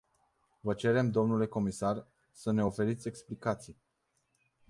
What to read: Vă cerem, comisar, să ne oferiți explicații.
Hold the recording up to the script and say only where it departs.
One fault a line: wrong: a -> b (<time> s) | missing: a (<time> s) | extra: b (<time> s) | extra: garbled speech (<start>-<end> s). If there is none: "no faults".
extra: dle (1.1 s)